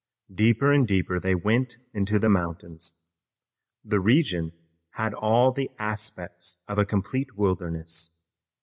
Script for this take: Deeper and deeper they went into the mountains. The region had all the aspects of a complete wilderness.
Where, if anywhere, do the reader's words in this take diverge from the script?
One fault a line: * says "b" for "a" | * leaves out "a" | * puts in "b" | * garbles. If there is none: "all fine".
all fine